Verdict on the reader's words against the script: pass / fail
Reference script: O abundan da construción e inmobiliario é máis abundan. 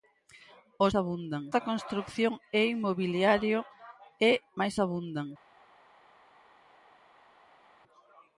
pass